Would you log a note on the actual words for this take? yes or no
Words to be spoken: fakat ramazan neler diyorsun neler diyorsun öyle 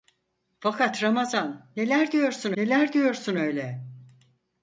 no